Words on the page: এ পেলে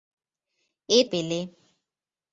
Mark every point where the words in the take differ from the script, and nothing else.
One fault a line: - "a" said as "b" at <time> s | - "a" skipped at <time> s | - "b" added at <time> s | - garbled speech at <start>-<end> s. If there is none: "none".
none